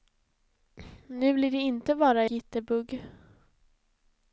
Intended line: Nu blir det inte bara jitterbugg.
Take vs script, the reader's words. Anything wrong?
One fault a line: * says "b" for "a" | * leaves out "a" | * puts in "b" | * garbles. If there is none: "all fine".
all fine